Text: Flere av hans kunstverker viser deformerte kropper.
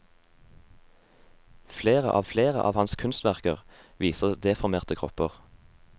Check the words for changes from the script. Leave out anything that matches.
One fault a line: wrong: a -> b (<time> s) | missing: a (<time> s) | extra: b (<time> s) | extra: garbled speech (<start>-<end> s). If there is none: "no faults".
extra: flere av (2.3 s)